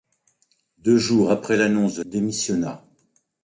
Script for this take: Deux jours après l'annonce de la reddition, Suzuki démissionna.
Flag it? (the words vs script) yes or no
yes